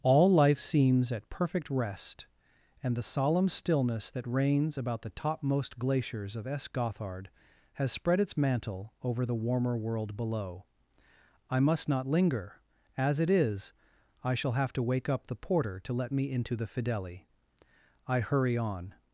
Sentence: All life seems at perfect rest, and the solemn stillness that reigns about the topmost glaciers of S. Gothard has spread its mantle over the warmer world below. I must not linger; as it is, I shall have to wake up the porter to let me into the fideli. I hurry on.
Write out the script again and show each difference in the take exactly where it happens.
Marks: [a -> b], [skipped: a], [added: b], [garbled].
All life seems at perfect rest, and the solemn stillness that reigns about the topmost glaciers of S. Gothard has spread its mantle over the warmer world below. I must not linger; as it is, I shall have to wake up the porter to let me into the fideli. I hurry on.